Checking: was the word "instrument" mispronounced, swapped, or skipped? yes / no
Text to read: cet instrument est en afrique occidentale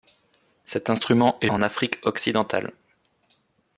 no